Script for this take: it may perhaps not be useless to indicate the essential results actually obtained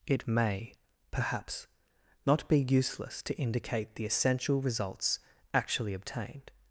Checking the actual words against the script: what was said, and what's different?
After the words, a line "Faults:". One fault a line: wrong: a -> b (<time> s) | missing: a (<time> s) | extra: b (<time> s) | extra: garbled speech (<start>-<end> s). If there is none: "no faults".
it may perhaps not be useless to indicate the essential results actually obtained
Faults:
no faults